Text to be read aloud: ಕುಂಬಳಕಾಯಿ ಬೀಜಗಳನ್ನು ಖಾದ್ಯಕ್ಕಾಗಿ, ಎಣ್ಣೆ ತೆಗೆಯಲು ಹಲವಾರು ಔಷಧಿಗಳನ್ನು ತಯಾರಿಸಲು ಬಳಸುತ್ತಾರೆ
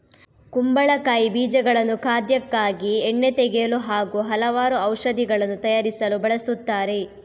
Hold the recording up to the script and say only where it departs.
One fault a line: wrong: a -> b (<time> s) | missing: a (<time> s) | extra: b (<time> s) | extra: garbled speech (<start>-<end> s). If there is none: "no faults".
extra: ಹಾಗೂ (3.8 s)